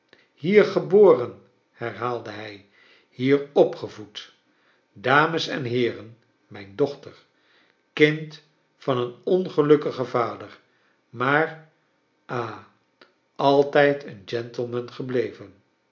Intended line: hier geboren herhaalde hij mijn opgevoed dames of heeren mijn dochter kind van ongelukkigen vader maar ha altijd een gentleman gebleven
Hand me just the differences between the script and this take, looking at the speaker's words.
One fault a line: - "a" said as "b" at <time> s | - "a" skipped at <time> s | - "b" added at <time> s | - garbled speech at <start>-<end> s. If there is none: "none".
- "mijn" said as "hier" at 3.1 s
- "of" said as "en" at 5.5 s
- "een" added at 9.0 s